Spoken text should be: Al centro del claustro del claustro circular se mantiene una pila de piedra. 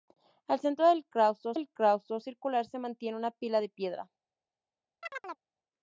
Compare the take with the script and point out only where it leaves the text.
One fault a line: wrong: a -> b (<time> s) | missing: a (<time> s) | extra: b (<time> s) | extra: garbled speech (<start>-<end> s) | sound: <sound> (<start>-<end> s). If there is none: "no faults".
sound: chirp (5.0-5.4 s)